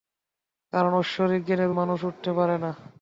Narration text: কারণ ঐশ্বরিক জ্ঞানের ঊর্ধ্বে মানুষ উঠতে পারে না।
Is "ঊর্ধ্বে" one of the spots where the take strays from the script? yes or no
yes